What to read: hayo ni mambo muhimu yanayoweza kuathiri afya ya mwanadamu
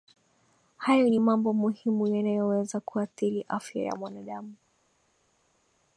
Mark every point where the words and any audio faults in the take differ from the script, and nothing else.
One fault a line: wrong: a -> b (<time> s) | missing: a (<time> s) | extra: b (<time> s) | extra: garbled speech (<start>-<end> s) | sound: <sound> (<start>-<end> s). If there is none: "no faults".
no faults